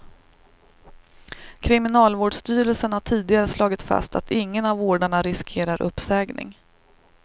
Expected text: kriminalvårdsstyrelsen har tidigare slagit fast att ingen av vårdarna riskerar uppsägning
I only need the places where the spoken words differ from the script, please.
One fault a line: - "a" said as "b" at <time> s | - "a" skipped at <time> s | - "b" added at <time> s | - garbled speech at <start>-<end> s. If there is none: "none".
none